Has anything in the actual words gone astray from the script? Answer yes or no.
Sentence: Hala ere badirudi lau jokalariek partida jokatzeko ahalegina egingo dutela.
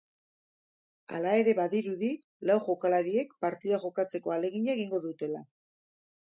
no